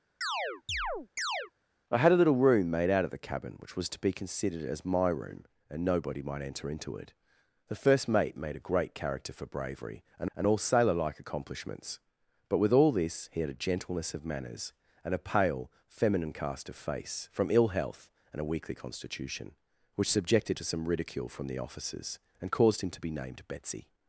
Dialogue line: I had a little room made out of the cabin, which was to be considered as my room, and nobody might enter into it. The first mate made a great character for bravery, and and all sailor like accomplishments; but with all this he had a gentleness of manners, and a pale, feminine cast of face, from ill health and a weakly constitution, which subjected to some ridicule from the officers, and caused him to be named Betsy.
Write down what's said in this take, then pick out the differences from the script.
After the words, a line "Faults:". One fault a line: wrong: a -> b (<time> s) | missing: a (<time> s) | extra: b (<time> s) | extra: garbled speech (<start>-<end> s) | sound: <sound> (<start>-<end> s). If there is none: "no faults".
I had a little room made out of the cabin, which was to be considered as my room, and nobody might enter into it. The first mate made a great character for bravery, and and all sailor like accomplishments; but with all this he had a gentleness of manners, and a pale, feminine cast of face, from ill health and a weakly constitution, which subjected to some ridicule from the officers, and caused him to be named Betsy.
Faults:
sound: chirp (0.2-1.5 s)